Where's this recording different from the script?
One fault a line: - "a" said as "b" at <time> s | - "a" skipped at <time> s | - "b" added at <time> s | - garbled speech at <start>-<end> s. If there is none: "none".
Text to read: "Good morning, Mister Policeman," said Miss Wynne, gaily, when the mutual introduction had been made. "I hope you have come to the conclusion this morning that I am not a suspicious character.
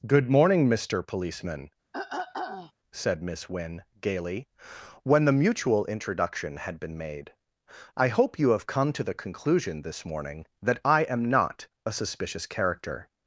none